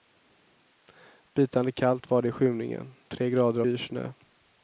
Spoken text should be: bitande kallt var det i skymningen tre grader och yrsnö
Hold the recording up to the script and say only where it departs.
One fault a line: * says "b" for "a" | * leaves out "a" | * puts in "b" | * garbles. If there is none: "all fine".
* leaves out "och"